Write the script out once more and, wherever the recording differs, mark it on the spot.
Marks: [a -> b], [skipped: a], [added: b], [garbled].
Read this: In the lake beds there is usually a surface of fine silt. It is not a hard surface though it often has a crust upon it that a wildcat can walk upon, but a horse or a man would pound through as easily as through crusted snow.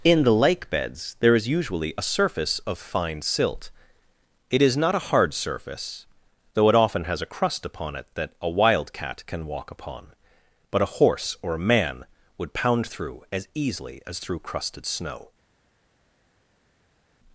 In the lake beds there is usually a surface of fine silt. It is not a hard surface though it often has a crust upon it that a wildcat can walk upon, but a horse or a man would pound through as easily as through crusted snow.